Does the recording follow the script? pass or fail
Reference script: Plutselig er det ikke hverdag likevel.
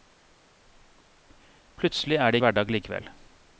fail